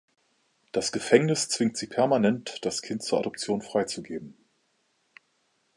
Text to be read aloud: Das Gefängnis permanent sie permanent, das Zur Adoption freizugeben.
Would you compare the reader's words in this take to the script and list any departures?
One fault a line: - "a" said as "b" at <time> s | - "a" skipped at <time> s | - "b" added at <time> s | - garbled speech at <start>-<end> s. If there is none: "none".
- "permanent" said as "zwingt" at 1.5 s
- "Kind" added at 2.8 s